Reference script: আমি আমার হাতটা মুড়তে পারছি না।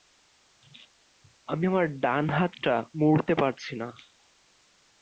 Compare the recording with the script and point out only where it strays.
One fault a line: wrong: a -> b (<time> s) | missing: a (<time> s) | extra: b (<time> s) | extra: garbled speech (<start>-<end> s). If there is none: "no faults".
extra: ডান (2.0 s)